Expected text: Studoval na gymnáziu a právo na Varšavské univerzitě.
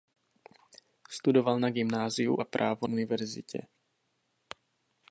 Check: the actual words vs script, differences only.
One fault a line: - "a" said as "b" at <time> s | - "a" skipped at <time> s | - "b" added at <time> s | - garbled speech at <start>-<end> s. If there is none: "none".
- "na Varšavské" skipped at 2.9 s